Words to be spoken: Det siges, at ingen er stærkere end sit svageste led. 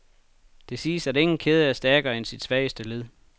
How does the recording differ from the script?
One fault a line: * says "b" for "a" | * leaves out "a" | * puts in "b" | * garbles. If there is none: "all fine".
* puts in "kæde"